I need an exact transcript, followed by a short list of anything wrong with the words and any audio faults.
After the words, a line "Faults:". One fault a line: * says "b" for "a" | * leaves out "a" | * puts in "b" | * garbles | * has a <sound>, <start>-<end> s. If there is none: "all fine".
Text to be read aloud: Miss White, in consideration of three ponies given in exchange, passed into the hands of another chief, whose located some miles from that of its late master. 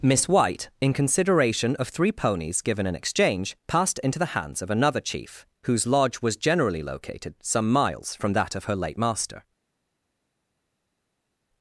Miss White, in consideration of three ponies given in exchange, passed into the hands of another chief, whose lodge was generally located some miles from that of her late master.
Faults:
* puts in "lodge was generally"
* says "her" for "its"